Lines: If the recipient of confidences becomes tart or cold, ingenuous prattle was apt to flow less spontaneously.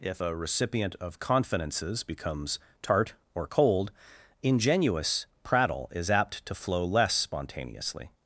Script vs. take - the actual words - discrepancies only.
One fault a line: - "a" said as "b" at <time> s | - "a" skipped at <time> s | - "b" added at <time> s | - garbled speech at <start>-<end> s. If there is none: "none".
- "the" said as "a" at 0.2 s
- "was" said as "is" at 5.9 s